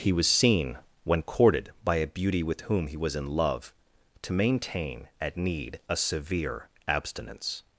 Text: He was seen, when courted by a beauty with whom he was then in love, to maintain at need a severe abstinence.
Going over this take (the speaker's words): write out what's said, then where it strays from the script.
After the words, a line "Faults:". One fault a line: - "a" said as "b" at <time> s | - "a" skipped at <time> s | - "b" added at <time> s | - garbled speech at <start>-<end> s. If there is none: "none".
He was seen, when courted by a beauty with whom he was in love, to maintain at need a severe abstinence.
Faults:
- "then" skipped at 3.1 s